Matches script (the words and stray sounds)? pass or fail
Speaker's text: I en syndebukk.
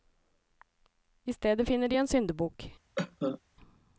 fail